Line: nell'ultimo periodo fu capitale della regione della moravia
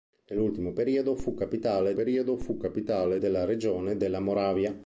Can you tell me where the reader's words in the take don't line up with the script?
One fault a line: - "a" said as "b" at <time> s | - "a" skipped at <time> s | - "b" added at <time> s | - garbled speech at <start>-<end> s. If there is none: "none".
- "periodo fu capitale" added at 1.9 s